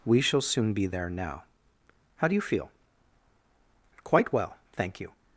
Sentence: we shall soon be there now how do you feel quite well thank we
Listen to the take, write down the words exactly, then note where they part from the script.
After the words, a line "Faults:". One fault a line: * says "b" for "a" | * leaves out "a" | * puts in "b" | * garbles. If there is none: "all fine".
we shall soon be there now how do you feel quite well thank you
Faults:
* says "you" for "we"